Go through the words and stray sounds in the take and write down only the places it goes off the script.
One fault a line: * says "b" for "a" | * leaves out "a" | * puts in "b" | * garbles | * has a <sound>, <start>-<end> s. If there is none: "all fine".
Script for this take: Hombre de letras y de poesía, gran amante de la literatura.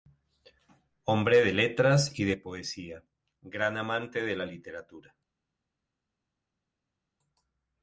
all fine